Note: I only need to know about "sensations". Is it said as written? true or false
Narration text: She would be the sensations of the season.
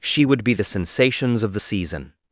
true